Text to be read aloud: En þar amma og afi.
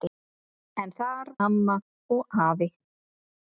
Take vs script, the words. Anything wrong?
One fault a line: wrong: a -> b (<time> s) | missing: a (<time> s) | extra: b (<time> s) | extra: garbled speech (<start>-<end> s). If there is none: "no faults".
no faults